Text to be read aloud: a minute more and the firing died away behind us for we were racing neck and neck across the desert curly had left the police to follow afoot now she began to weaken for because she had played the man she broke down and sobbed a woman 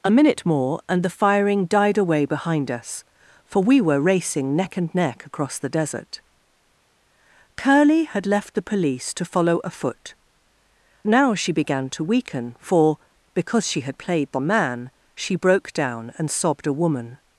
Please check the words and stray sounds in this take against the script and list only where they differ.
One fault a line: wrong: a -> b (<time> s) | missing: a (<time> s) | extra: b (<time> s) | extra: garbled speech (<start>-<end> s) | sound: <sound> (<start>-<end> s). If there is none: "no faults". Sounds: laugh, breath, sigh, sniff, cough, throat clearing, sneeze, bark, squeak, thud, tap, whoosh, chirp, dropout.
no faults